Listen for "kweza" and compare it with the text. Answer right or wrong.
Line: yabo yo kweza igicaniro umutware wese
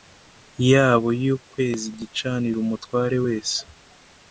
right